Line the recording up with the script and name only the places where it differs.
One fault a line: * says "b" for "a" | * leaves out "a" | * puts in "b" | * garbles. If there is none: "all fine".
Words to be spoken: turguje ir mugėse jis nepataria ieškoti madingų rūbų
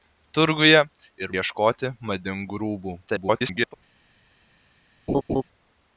* leaves out "mugėse jis nepataria"
* garbles